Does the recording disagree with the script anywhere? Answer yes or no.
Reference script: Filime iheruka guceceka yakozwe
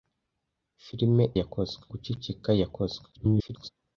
yes